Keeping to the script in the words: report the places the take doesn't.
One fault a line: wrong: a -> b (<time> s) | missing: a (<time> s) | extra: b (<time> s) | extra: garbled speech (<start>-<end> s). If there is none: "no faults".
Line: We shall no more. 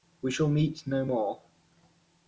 extra: meet (0.5 s)